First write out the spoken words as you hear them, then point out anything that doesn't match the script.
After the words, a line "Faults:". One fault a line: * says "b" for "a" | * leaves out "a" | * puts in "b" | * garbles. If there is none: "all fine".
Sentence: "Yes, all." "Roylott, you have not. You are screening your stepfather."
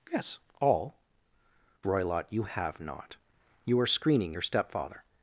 "Yes, all." "Roylott, you have not. You are screening your stepfather."
Faults:
all fine